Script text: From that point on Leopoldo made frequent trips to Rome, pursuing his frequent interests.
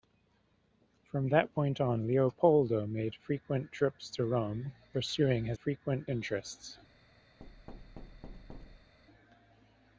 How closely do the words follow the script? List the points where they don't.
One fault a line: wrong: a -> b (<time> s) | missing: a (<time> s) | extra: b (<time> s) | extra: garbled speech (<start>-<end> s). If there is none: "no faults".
no faults